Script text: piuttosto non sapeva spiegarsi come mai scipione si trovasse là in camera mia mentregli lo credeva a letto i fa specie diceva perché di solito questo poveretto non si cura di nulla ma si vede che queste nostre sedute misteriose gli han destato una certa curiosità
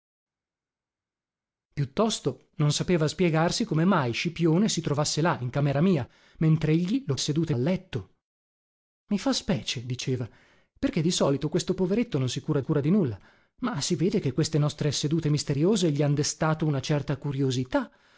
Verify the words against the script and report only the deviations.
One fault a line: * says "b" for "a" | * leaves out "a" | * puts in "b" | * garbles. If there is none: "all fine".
* says "sedute" for "credeva"
* puts in "cura"